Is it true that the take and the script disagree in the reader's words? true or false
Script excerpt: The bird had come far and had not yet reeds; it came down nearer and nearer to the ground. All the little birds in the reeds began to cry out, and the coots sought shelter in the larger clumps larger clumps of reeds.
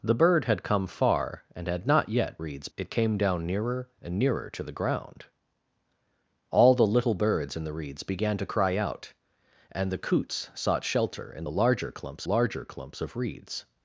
false